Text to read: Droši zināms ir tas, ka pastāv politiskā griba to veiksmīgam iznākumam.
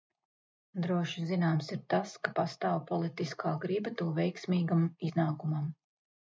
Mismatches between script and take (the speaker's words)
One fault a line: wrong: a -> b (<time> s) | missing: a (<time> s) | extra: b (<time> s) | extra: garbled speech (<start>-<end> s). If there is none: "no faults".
no faults